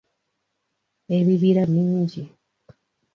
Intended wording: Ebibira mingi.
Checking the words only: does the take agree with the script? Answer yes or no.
yes